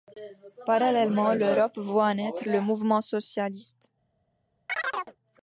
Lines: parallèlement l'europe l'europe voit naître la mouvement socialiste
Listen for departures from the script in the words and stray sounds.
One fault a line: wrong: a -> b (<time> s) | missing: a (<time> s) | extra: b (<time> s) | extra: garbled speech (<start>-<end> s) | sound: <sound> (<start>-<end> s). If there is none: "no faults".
missing: l'europe (1.8 s)
wrong: la -> le (2.4 s)
sound: chirp (4.7-5.2 s)